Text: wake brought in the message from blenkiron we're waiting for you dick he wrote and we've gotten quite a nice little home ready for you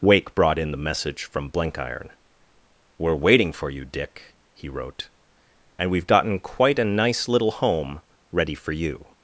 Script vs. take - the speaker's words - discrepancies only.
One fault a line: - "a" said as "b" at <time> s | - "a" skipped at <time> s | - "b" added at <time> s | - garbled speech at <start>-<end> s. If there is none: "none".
none